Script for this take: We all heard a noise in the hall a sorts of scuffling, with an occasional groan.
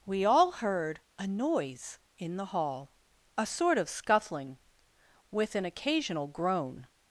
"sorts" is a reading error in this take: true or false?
true